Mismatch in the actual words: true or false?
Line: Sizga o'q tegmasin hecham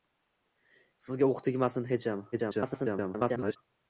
true